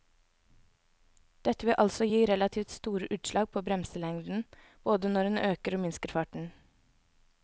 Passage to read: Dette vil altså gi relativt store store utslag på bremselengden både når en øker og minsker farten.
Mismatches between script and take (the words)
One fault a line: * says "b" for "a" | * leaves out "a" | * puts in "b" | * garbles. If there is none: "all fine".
* leaves out "store"